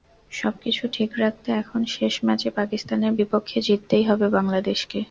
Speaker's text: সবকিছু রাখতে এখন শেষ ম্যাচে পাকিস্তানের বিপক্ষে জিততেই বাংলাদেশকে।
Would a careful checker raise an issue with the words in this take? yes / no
yes